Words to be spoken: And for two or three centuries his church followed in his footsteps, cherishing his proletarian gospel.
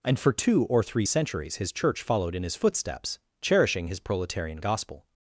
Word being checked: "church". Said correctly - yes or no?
yes